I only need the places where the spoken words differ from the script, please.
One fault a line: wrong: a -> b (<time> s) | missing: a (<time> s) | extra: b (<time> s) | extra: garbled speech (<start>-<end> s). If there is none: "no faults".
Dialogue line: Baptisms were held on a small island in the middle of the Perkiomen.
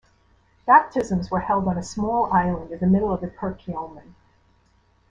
no faults